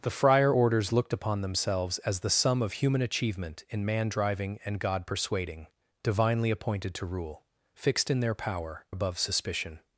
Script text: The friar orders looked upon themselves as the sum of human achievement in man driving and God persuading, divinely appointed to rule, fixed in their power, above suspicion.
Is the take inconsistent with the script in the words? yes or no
no